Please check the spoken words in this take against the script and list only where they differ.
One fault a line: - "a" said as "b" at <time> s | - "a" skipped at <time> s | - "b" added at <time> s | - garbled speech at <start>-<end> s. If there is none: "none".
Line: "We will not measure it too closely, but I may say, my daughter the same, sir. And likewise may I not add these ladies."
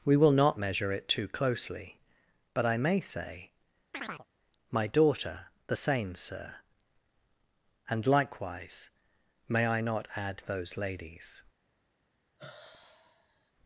- "these" said as "those" at 10.4 s